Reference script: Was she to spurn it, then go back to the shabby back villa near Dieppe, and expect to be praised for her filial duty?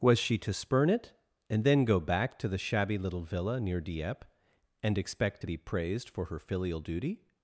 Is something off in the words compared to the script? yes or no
yes